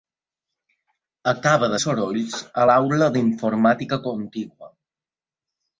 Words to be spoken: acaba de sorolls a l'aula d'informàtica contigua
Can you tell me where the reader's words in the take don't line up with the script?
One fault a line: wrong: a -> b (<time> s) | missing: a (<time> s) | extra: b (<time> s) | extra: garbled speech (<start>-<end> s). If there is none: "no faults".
no faults